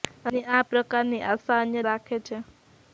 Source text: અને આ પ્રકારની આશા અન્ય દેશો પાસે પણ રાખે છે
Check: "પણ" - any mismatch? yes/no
yes